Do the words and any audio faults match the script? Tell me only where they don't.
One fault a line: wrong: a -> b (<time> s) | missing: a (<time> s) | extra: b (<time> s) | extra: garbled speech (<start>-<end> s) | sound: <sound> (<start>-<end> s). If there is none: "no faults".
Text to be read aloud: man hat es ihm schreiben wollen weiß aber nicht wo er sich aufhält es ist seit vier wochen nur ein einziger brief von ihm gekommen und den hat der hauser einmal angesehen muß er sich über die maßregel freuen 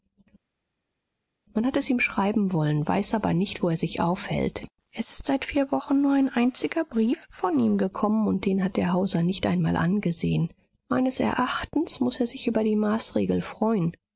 extra: nicht (9.2 s)
extra: meines erachtens (10.9 s)